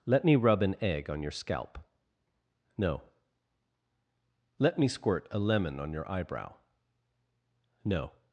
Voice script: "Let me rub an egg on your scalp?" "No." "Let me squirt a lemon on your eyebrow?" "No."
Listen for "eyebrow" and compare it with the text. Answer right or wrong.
right